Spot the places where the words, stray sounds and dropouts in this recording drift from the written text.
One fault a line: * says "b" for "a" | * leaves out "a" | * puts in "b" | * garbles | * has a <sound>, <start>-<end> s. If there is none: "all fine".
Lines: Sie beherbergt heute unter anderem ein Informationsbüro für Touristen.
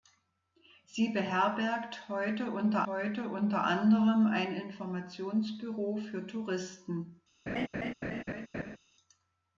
* puts in "heute unter"
* has a laugh, 7.5-8.8 s